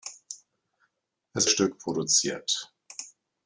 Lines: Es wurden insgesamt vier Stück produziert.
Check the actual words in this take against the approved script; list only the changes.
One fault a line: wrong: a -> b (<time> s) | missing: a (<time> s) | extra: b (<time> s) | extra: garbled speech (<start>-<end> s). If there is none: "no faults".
missing: wurden insgesamt vier (1.5 s)